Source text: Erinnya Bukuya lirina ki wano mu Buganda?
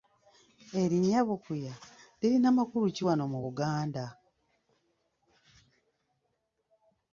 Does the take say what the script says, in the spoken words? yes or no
no